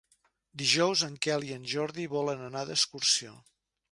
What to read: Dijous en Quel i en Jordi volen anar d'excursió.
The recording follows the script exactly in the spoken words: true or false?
true